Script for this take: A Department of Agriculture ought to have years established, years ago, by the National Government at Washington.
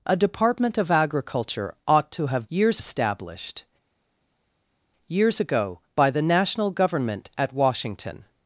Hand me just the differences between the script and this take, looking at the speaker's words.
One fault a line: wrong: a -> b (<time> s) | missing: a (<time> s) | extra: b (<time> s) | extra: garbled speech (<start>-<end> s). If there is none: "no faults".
no faults